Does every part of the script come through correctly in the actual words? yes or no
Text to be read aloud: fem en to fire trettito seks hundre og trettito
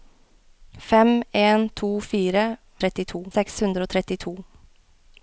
yes